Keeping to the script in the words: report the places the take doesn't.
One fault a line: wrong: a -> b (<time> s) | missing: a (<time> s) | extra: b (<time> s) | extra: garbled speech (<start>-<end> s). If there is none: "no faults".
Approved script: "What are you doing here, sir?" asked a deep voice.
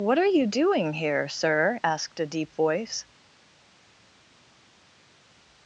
no faults